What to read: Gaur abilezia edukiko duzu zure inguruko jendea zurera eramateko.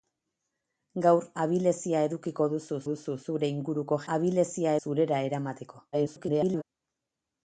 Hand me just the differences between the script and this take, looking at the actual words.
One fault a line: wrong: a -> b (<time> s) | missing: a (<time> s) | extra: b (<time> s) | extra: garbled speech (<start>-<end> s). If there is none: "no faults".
extra: duzu (2.9 s)
wrong: jendea -> abilezia (4.1 s)
extra: garbled speech (5.9-6.6 s)